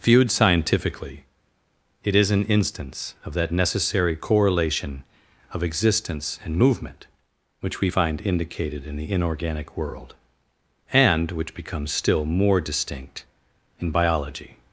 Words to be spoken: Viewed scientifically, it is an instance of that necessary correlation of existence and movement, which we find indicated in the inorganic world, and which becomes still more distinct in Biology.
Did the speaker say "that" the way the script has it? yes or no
yes